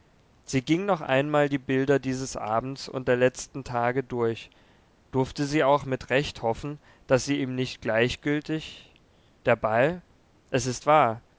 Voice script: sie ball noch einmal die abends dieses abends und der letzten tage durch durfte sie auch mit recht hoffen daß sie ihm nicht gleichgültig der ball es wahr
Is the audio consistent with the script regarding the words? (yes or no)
no